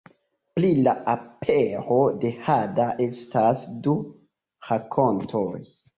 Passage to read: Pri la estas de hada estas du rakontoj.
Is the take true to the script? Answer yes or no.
no